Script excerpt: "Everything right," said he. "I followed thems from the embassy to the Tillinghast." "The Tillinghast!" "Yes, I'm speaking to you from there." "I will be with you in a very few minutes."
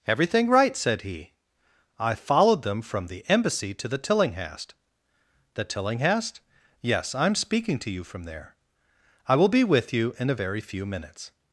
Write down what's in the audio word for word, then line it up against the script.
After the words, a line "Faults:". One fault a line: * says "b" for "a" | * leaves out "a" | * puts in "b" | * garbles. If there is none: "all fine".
"Everything right," said he. "I followed them from the embassy to the Tillinghast." "The Tillinghast!" "Yes, I'm speaking to you from there." "I will be with you in a very few minutes."
Faults:
* says "them" for "thems"